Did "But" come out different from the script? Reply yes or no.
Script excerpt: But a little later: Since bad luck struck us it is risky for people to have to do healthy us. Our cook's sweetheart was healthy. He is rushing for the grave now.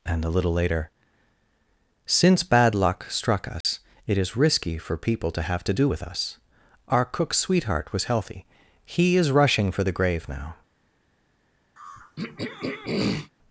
yes